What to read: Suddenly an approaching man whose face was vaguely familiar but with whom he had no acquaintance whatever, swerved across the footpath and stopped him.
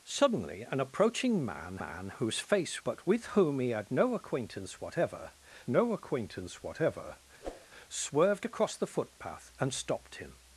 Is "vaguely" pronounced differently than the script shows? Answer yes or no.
yes